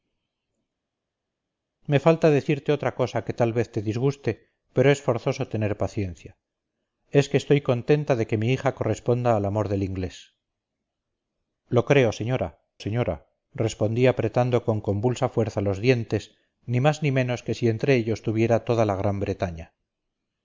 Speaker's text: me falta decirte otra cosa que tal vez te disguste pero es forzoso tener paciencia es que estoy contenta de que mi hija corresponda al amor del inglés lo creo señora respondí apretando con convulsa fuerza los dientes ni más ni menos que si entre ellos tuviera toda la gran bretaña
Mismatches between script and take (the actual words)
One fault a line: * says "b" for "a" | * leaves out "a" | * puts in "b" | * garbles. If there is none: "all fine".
* puts in "señora"